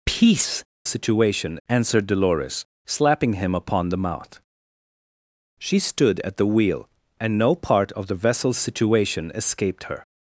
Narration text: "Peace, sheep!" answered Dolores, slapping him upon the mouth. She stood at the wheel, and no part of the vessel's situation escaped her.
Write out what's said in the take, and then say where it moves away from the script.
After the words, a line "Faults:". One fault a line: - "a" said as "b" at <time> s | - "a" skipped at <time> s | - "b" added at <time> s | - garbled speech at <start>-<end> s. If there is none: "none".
"Peace, situation!" answered Dolores, slapping him upon the mouth. She stood at the wheel, and no part of the vessel's situation escaped her.
Faults:
- "sheep" said as "situation" at 0.8 s